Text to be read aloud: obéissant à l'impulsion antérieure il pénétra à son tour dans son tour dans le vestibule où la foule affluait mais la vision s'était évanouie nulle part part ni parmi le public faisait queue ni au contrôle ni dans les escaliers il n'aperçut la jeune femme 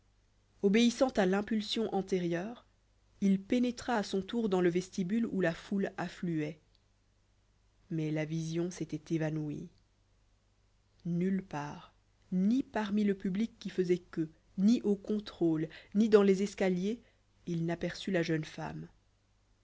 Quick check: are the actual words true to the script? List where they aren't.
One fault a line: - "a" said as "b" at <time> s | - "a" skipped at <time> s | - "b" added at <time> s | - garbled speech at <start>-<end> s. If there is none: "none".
- "son tour dans" skipped at 4.6 s
- "part" skipped at 11.9 s
- "qui" added at 13.6 s